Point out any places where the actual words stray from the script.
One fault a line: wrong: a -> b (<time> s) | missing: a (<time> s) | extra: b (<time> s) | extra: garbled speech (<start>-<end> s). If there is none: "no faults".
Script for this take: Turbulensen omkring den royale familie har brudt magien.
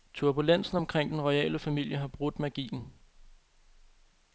no faults